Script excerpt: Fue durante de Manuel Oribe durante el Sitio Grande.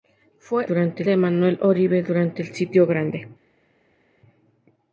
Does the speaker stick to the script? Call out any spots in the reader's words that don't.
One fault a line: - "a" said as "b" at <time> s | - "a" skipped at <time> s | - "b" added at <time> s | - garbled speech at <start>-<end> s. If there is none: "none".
none